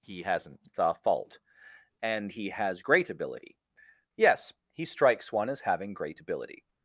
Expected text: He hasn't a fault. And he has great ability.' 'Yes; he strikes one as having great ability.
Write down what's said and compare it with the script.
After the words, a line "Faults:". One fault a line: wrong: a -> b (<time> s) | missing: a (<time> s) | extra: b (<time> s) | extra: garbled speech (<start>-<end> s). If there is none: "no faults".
He hasn't the fault. And he has great ability.' 'Yes; he strikes one as having great ability.
Faults:
wrong: a -> the (0.7 s)